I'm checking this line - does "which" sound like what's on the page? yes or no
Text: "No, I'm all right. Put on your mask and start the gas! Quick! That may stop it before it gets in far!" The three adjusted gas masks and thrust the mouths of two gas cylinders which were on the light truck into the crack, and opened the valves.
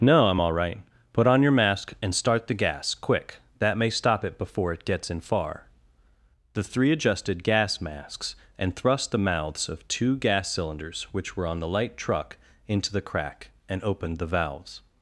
yes